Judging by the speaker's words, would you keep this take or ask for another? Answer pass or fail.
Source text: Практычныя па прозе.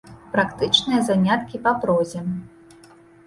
fail